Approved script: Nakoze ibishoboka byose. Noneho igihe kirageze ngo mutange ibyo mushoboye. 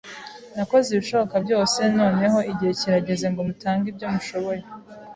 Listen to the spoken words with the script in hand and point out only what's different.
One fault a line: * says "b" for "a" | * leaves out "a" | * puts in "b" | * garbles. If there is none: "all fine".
all fine